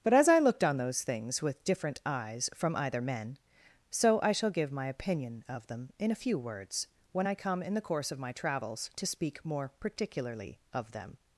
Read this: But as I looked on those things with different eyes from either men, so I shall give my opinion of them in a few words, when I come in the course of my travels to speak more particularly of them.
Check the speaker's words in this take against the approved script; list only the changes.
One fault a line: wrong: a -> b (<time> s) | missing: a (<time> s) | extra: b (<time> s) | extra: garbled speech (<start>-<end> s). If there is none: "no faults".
no faults